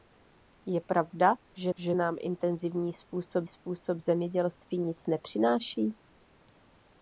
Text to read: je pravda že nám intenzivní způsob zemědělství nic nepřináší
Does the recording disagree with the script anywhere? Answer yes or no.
yes